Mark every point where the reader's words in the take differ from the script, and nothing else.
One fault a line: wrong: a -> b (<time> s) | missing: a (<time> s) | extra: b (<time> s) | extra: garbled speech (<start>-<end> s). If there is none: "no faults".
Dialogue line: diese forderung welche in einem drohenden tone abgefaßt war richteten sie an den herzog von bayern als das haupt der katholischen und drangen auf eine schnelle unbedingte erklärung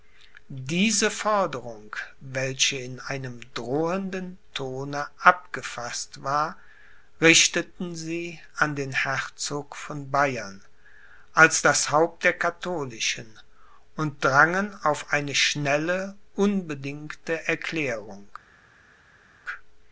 no faults